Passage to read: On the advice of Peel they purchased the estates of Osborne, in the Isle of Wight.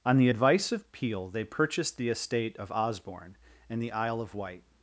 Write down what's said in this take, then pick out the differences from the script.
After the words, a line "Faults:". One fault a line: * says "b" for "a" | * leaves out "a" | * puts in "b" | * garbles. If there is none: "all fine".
On the advice of Peel they purchased the estate of Osborne, in the Isle of Wight.
Faults:
* says "estate" for "estates"